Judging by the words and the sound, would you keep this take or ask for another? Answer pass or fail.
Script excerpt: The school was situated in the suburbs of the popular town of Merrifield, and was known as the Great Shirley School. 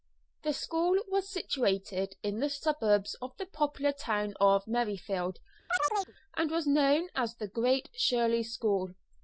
fail